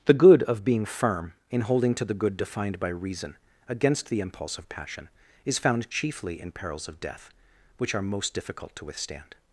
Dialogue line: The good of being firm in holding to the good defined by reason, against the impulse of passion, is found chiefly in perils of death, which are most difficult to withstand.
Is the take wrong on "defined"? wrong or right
right